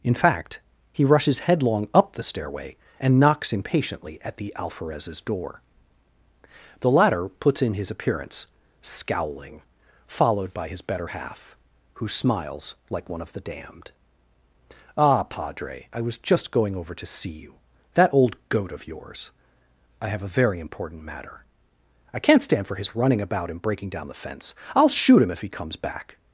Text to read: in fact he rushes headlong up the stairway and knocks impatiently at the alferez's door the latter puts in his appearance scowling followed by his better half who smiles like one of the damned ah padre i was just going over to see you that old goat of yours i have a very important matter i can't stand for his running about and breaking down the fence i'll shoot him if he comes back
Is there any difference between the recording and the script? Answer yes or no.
no